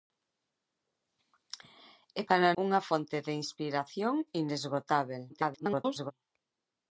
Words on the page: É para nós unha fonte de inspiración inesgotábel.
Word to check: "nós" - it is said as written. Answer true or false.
false